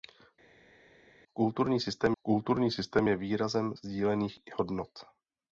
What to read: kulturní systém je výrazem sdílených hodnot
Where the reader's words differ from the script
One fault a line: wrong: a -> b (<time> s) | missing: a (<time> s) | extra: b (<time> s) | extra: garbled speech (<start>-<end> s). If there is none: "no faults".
extra: kulturní systém (2.2 s)